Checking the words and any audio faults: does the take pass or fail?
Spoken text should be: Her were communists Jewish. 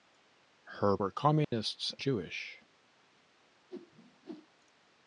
fail